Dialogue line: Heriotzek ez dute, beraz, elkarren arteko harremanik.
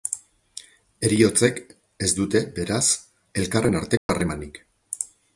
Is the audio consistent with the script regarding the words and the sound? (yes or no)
no